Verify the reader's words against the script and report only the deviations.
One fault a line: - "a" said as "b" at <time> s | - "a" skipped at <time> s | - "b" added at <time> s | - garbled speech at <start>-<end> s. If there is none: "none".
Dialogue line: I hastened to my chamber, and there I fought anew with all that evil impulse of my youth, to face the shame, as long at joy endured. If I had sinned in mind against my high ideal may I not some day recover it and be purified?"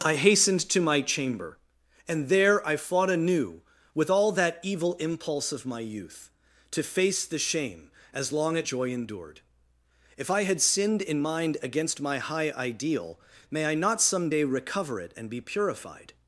none